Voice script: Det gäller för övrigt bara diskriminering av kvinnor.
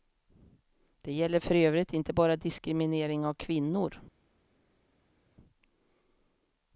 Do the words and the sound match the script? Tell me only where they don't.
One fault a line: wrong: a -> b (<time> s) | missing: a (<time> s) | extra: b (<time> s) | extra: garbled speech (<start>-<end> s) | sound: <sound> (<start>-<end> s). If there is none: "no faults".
extra: inte (1.9 s)